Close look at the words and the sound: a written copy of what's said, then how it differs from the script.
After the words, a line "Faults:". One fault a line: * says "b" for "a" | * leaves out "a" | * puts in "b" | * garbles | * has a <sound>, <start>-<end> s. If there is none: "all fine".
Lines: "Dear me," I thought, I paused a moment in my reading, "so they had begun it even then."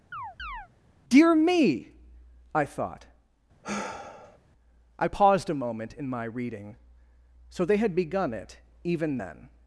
"Dear me," I thought, I paused a moment in my reading, "so they had begun it even then."
Faults:
* has a chirp, 0.1-0.7 s
* has a sigh, 3.6-4.4 s